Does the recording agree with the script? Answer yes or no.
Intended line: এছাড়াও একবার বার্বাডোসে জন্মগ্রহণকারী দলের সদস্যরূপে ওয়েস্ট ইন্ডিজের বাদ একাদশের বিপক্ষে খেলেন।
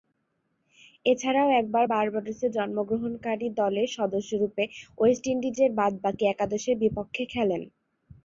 no